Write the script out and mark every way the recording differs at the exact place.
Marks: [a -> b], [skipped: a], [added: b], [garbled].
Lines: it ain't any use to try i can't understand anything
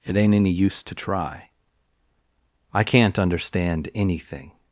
it ain't any use to try i can't understand anything